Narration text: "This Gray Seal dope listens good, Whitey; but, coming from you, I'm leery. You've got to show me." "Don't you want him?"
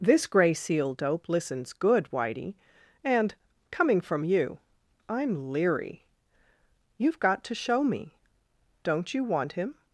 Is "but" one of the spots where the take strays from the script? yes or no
yes